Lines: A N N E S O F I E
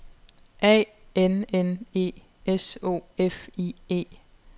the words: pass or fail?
pass